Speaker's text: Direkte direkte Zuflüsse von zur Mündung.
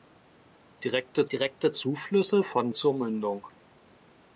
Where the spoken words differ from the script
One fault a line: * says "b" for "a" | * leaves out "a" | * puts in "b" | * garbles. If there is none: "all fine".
all fine